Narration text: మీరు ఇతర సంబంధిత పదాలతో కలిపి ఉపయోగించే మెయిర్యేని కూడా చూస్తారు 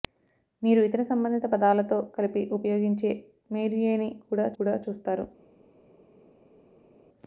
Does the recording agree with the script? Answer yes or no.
no